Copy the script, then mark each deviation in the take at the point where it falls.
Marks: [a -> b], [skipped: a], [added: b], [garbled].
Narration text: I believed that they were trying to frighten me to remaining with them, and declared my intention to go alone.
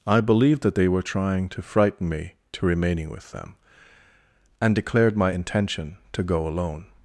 I believed that they were trying to frighten me to remaining with them, and declared my intention to go alone.